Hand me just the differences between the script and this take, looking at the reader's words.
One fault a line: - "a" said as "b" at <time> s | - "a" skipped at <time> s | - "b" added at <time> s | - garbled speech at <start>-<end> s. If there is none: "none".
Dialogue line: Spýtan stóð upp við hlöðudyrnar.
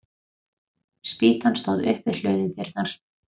none